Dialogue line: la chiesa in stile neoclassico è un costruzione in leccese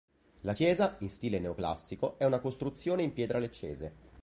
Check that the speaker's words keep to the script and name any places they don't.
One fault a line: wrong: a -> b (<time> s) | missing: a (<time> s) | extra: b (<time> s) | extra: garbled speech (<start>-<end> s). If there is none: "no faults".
wrong: un -> una (2.2 s)
extra: pietra (3.1 s)